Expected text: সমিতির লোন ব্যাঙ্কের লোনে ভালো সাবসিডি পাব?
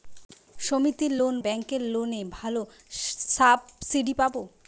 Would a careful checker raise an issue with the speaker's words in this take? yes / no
no